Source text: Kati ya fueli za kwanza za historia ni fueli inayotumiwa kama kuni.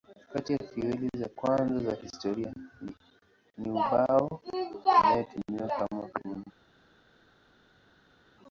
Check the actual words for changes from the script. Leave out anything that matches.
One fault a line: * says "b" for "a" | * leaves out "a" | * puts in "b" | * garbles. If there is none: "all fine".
* says "ubao" for "fueli"